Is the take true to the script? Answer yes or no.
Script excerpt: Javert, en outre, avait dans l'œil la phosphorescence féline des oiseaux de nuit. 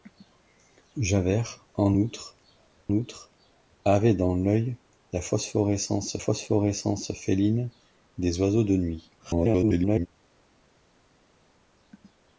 no